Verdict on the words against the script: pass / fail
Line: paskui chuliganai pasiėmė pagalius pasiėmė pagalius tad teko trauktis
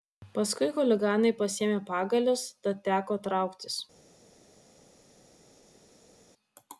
fail